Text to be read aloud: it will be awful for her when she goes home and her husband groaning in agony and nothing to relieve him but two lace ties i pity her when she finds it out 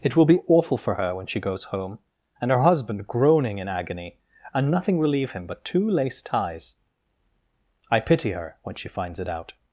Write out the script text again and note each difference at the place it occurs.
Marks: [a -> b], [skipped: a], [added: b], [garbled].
it will be awful for her when she goes home and her husband groaning in agony and nothing [skipped: to] relieve him but two lace ties i pity her when she finds it out